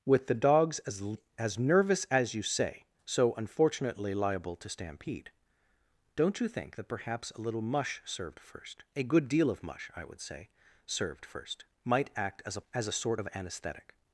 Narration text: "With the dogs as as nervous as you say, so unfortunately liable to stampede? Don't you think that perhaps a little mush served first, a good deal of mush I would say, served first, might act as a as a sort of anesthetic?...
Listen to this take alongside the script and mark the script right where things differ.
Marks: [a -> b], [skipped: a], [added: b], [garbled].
"With the dogs as as nervous as you say, so unfortunately liable to stampede? Don't you think that perhaps a little mush served first, a good deal of mush I would say, served first, might act as a as a sort of anesthetic?...